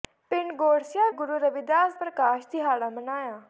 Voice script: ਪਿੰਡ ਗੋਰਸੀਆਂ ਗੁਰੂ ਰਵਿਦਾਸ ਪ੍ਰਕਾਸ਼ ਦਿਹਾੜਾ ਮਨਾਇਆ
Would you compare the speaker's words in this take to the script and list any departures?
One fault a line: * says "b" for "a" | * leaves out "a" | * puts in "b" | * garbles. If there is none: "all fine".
all fine